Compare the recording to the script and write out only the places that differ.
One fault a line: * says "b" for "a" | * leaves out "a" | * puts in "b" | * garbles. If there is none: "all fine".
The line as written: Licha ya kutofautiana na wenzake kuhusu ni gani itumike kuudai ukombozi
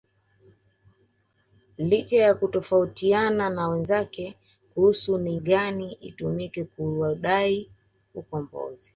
all fine